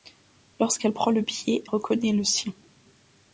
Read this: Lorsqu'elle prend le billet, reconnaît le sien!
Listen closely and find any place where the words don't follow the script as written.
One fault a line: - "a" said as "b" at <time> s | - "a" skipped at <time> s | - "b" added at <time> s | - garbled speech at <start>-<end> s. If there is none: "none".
none